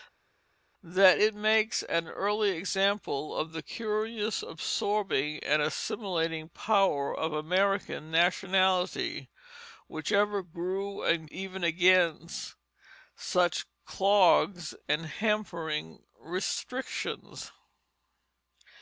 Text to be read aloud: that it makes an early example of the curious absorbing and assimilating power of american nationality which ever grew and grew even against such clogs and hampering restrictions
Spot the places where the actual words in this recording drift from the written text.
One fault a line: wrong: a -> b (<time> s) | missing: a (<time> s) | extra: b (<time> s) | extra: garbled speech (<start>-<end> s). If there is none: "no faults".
missing: grew (11.3 s)